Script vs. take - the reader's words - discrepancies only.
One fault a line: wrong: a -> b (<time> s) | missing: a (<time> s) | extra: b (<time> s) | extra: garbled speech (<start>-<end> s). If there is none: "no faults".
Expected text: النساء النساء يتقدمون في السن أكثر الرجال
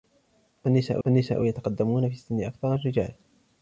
no faults